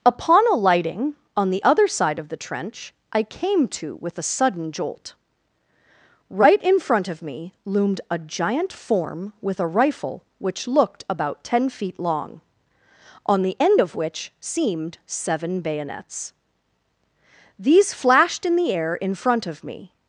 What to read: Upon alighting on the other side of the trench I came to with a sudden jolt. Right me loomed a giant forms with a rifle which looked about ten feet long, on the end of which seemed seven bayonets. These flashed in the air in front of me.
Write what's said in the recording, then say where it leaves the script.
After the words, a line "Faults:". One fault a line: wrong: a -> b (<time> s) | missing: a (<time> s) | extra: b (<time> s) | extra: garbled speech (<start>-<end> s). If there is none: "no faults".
Upon alighting on the other side of the trench I came to with a sudden jolt. Right in front of me loomed a giant form with a rifle which looked about ten feet long, on the end of which seemed seven bayonets. These flashed in the air in front of me.
Faults:
extra: in front of (6.6 s)
wrong: forms -> form (8.7 s)